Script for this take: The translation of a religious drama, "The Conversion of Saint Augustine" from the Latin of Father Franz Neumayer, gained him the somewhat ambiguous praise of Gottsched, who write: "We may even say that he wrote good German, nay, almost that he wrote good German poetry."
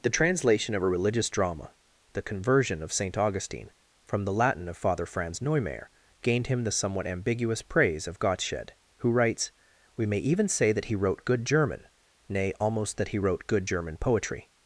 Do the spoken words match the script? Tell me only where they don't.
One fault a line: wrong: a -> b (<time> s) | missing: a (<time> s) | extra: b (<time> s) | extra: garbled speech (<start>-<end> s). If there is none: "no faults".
wrong: write -> writes (9.1 s)